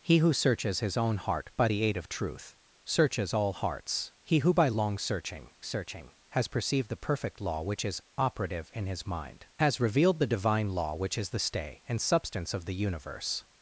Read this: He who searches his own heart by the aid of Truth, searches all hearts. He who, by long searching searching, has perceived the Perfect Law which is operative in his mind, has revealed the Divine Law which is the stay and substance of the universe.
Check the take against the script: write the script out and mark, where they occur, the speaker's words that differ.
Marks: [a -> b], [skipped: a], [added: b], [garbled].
He who searches his own heart by the aid of Truth, searches all hearts. He who, by long searching searching, has perceived the Perfect Law which is operative in his mind, has revealed the Divine Law which is the stay and substance of the universe.